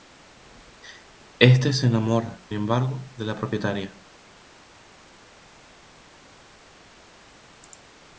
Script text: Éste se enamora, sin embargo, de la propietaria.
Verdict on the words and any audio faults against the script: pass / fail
fail